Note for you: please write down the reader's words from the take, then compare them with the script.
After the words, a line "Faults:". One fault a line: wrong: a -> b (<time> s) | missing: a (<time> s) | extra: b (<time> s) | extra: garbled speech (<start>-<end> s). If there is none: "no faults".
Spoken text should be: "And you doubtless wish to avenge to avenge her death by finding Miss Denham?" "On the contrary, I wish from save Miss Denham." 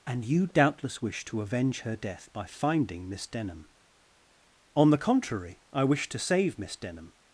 "And you doubtless wish to avenge her death by finding Miss Denham?" "On the contrary, I wish to save Miss Denham."
Faults:
missing: to avenge (1.8 s)
wrong: from -> to (6.1 s)